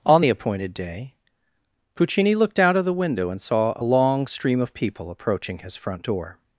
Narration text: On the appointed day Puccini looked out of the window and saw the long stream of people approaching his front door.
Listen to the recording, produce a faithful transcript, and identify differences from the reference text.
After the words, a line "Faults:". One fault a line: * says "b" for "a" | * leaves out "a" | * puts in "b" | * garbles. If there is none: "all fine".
On the appointed day Puccini looked out of the window and saw a long stream of people approaching his front door.
Faults:
* says "a" for "the"